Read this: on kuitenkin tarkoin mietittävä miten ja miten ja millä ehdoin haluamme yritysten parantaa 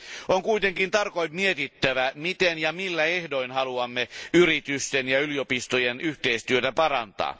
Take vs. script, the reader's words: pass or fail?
fail